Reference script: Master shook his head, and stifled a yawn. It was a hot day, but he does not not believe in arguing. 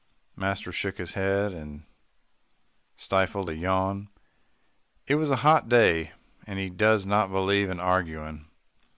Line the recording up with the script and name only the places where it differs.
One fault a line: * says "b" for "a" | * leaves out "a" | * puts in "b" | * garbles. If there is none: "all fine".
* says "and" for "but"
* leaves out "not"